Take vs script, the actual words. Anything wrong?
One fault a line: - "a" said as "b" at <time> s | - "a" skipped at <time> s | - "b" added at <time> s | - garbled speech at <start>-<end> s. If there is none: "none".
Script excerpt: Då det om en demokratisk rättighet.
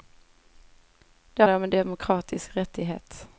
none